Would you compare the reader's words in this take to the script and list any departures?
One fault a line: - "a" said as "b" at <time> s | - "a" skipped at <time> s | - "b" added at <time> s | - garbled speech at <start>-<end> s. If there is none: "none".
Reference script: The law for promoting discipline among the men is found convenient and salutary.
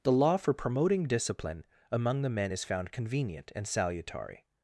none